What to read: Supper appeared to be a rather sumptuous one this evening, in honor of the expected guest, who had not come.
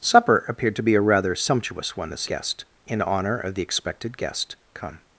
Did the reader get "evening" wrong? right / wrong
wrong